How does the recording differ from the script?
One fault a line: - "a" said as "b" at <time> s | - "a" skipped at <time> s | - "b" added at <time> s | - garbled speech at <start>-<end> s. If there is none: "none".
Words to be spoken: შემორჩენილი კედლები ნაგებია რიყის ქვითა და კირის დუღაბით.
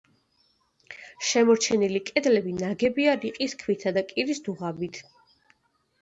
none